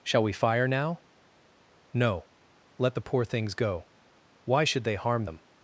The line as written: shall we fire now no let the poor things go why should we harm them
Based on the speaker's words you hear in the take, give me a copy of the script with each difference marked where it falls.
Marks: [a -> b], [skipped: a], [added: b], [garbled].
shall we fire now no let the poor things go why should [we -> they] harm them